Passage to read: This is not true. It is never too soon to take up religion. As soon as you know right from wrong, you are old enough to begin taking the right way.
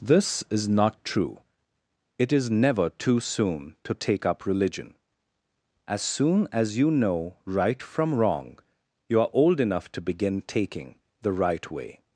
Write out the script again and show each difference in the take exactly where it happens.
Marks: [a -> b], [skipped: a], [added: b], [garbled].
This is not true. It is never too soon to take up religion. As soon as you know right from wrong, you are old enough to begin taking the right way.